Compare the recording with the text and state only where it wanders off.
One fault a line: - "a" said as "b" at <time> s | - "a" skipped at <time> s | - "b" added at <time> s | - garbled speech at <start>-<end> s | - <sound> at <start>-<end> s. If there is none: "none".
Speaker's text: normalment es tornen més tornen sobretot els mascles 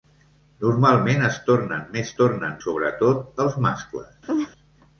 - laugh at 4.3-4.5 s